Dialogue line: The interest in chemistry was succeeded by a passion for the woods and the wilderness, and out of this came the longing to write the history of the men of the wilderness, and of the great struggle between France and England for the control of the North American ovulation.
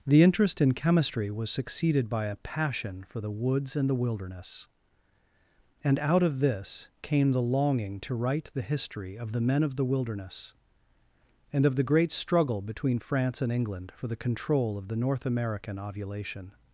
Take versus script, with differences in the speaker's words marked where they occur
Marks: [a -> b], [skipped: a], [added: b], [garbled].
The interest in chemistry was succeeded by a passion for the woods and the wilderness, and out of this came the longing to write the history of the men of the wilderness, and of the great struggle between France and England for the control of the North American ovulation.